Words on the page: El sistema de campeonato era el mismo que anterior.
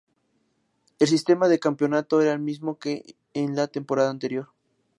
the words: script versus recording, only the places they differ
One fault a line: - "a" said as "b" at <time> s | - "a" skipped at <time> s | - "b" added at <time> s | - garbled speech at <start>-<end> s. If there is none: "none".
- "en la temporada" added at 3.4 s